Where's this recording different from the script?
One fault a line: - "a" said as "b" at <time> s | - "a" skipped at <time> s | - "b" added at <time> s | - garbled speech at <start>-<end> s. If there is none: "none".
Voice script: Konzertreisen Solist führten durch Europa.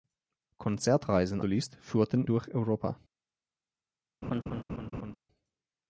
none